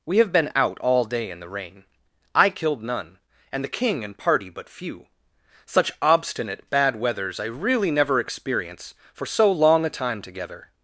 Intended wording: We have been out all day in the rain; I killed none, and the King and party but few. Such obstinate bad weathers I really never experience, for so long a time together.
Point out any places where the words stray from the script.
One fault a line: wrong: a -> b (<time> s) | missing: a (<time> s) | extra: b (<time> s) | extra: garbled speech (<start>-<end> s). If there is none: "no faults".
no faults